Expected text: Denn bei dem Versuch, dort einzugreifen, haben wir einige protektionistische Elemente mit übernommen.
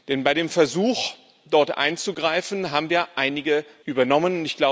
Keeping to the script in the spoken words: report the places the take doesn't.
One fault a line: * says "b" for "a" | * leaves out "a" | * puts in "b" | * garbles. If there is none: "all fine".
* leaves out "protektionistische Elemente mit"